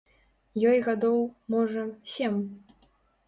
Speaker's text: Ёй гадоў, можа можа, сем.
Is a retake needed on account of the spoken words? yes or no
yes